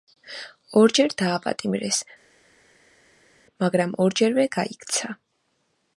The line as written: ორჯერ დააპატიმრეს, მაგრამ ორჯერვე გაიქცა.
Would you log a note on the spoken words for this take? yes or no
no